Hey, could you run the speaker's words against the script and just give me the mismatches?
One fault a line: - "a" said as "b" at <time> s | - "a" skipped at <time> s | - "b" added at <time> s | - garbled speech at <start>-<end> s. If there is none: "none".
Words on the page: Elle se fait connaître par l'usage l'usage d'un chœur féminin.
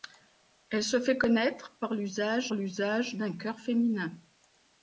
none